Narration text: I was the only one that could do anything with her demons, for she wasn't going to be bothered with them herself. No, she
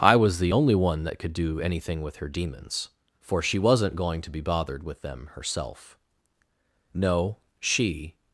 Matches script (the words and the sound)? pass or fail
pass